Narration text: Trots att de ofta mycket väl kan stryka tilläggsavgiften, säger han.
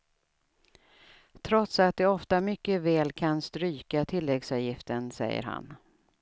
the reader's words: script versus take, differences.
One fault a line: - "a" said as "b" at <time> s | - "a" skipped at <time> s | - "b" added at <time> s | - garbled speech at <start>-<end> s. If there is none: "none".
none